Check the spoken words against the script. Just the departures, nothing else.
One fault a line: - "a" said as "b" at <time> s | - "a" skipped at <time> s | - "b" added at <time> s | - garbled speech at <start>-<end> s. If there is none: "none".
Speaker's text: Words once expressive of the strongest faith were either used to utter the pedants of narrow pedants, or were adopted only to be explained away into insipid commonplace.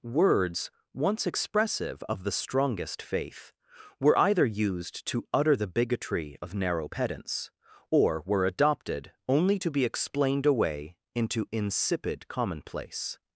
- "pedants" said as "bigotry" at 5.7 s